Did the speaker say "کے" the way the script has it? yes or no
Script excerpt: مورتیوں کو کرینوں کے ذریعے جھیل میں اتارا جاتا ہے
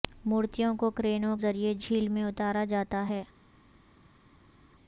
no